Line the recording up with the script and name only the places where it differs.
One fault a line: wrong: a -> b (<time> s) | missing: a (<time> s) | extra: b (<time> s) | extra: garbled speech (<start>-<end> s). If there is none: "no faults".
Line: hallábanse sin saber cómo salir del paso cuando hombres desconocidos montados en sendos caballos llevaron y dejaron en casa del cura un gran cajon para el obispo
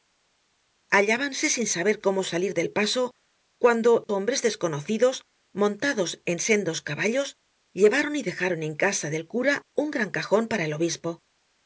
no faults